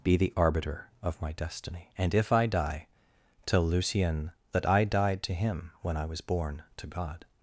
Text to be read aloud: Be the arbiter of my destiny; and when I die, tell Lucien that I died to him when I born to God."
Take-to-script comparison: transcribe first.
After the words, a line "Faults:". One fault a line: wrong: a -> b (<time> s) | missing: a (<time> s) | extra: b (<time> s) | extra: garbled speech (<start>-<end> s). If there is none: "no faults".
Be the arbiter of my destiny; and if I die, tell Lucien that I died to him when I was born to God."
Faults:
wrong: when -> if (2.1 s)
extra: was (6.0 s)